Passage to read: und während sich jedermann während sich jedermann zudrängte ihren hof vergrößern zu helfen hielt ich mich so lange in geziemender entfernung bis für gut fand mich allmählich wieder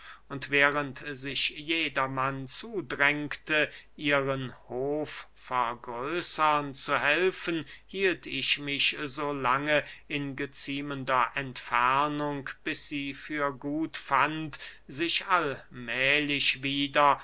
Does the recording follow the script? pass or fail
fail